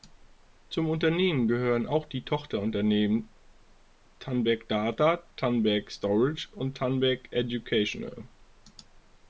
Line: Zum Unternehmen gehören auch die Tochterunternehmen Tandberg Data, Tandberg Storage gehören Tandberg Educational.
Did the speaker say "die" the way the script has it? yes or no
yes